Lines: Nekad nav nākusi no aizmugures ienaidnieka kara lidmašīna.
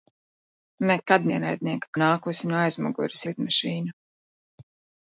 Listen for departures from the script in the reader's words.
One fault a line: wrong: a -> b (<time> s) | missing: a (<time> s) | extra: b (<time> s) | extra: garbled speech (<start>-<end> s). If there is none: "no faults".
wrong: nav -> ienaidnieka (1.3 s)
missing: ienaidnieka kara (3.3 s)